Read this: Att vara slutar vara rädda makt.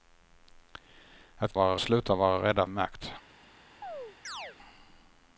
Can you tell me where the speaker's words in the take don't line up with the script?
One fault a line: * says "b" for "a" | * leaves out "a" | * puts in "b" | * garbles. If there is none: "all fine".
all fine